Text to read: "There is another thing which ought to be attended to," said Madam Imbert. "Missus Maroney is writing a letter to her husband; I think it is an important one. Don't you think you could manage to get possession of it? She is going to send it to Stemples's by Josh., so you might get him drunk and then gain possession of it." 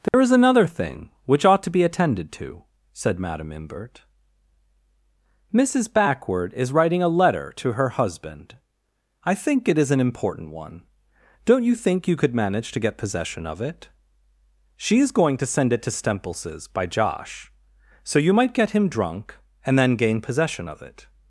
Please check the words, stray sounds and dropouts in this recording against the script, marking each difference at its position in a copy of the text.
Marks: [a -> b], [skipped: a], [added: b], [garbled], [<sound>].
"There [dropout] is another thing which ought to be attended to," said Madam Imbert. "Missus [Maroney -> Backward] is writing a letter to her husband; I think it is an important one. Don't you think you could manage to get possession of it? She is going to send it to Stemples's by Josh., so you might get him drunk and then gain possession of it."